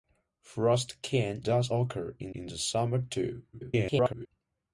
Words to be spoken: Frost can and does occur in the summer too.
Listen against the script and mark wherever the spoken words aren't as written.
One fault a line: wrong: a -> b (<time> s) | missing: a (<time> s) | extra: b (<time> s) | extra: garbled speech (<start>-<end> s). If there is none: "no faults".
missing: and (1.4 s)
extra: in (2.3 s)
extra: garbled speech (3.5-4.3 s)